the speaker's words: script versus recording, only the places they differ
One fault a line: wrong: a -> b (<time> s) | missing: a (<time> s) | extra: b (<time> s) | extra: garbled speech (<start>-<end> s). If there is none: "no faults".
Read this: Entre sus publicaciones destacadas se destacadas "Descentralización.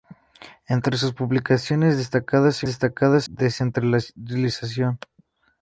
no faults